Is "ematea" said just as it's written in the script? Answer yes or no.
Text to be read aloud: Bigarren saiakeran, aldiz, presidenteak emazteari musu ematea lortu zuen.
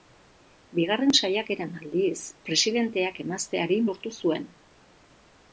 no